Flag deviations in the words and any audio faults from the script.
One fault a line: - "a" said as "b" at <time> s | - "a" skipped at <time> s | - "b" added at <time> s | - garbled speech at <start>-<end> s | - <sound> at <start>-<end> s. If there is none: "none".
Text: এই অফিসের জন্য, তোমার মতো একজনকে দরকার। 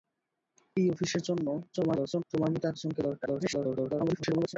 - garbled speech at 1.7-2.2 s
- garbled speech at 3.3-4.6 s